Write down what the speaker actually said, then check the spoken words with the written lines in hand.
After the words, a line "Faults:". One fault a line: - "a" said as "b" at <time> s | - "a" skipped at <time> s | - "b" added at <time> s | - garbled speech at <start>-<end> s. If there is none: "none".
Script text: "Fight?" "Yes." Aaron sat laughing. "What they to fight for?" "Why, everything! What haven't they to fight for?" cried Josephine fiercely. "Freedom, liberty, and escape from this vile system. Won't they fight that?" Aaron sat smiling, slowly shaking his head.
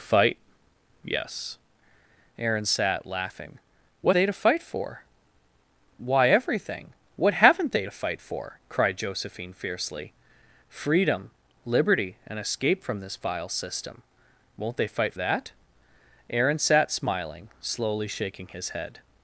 "Fight?" "Yes." Aaron sat laughing. "What they to fight for?" "Why, everything! What haven't they to fight for?" cried Josephine fiercely. "Freedom, liberty, and escape from this vile system. Won't they fight that?" Aaron sat smiling, slowly shaking his head.
Faults:
none